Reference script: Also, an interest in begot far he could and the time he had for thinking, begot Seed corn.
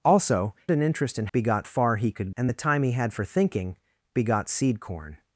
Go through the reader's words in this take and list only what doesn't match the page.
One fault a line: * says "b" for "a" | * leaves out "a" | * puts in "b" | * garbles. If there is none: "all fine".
all fine